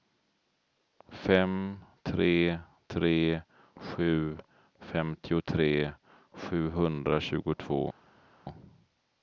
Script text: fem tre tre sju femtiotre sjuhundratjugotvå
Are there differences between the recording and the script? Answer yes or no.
no